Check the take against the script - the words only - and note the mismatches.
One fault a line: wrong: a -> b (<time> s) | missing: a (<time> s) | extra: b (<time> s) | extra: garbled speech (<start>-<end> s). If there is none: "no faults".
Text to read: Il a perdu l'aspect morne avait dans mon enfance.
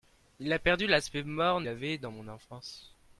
no faults